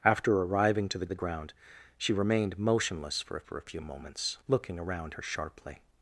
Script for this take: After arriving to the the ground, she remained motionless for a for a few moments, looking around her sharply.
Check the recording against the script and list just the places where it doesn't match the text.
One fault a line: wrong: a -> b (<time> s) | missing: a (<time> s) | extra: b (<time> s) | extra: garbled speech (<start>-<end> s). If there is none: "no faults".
no faults